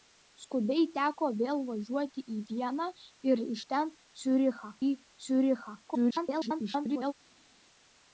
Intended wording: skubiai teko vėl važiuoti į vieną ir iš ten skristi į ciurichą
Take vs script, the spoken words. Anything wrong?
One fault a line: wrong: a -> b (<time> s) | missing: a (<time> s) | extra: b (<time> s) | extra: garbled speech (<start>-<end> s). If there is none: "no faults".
wrong: skristi -> ciurichą (4.2 s)
extra: garbled speech (5.9-7.1 s)